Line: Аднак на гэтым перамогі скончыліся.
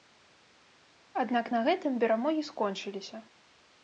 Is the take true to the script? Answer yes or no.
yes